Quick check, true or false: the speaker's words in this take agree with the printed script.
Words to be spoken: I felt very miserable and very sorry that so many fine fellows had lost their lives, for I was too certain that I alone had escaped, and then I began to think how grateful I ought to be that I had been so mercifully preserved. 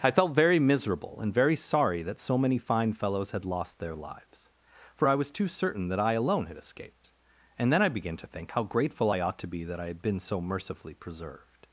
true